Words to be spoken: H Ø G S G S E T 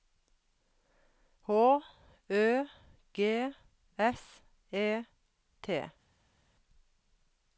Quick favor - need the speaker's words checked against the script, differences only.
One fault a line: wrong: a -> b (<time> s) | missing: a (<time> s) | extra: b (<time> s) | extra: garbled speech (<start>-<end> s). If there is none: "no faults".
missing: G S (4.4 s)